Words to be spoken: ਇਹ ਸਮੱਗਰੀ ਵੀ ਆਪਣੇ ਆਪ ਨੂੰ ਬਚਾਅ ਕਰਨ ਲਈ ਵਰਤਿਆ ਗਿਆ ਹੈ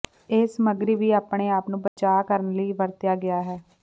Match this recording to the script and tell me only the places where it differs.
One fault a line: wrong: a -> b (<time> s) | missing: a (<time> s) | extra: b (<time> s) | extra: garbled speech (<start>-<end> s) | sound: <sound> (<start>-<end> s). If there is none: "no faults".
sound: dropout (1.9-2.0 s)